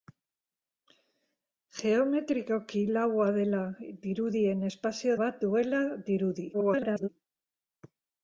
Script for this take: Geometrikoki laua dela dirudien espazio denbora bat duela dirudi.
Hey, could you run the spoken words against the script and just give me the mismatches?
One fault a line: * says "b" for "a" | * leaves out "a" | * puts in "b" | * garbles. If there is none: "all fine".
* leaves out "denbora"
* garbles